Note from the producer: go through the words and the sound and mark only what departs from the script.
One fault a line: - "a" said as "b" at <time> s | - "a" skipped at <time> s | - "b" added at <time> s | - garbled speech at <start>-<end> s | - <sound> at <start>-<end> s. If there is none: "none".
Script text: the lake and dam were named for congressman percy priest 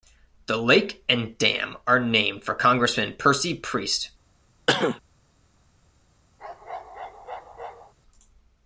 - "were" said as "are" at 1.9 s
- cough at 4.7-5.0 s
- bark at 6.4-7.9 s